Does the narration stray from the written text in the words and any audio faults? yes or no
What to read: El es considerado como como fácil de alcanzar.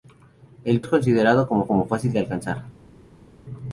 no